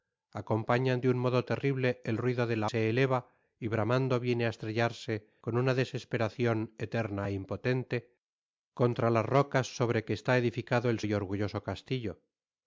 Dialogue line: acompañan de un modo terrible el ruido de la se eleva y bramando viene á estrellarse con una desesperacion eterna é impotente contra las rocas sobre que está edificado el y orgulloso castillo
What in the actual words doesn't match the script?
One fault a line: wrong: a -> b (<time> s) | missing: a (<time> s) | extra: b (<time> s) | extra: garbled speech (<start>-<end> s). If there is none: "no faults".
no faults